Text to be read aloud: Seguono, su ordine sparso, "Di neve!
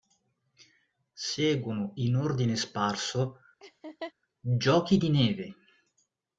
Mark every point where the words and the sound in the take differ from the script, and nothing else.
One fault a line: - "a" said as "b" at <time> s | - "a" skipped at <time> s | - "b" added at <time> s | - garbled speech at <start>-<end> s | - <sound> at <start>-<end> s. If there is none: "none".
- "su" said as "in" at 2.0 s
- laugh at 3.6-4.1 s
- "Giochi" added at 4.4 s